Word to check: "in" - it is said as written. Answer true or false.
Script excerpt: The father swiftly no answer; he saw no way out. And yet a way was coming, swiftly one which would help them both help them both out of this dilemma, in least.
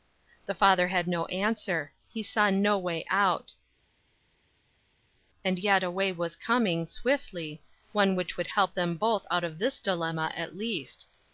false